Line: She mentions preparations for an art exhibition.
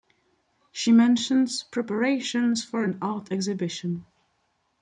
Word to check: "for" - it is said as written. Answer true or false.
true